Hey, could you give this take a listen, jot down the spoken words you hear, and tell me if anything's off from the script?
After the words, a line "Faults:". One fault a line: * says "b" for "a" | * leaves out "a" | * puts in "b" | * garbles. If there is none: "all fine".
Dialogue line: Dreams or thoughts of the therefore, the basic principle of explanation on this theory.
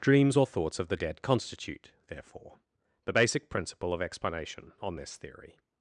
Dreams or thoughts of the dead constitute, therefore, the basic principle of explanation on this theory.
Faults:
* puts in "dead constitute"